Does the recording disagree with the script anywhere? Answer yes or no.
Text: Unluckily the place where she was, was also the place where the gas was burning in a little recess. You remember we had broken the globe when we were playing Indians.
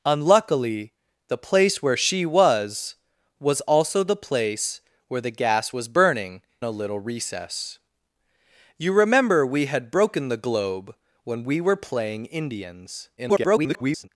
yes